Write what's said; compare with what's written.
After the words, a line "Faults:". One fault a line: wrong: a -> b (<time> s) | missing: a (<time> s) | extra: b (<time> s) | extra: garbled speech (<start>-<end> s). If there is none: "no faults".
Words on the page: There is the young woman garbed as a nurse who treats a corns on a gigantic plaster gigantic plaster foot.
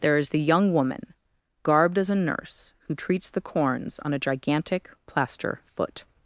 There is the young woman garbed as a nurse who treats the corns on a gigantic plaster foot.
Faults:
wrong: a -> the (3.3 s)
missing: gigantic plaster (5.6 s)